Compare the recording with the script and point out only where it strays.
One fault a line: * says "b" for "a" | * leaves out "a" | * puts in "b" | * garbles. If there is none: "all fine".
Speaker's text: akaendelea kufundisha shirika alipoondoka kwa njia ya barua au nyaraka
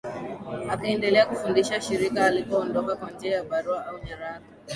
all fine